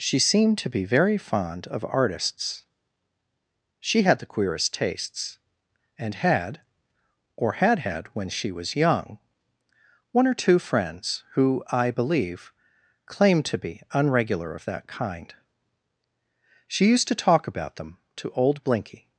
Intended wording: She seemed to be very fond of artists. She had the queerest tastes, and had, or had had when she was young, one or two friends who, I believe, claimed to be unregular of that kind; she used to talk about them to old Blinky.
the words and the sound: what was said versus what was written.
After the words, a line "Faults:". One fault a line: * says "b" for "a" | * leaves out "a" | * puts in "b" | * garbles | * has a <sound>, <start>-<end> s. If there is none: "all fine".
She seemed to be very fond of artists. She had the queerest tastes, and had, or had had when she was young, one or two friends who, I believe, claimed to be unregular of that kind; she used to talk about them to old Blinky.
Faults:
all fine